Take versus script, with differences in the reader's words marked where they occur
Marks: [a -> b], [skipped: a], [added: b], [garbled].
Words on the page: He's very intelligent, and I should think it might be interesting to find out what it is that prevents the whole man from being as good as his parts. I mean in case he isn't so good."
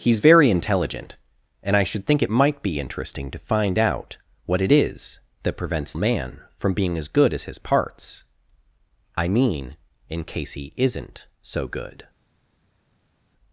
He's very intelligent, and I should think it might be interesting to find out what it is that prevents [skipped: the whole] man from being as good as his parts. I mean in case he isn't so good."